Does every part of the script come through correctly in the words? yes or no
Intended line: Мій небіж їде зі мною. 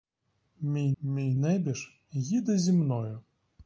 no